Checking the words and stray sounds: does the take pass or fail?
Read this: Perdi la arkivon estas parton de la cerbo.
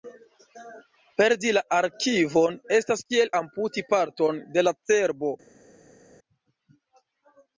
fail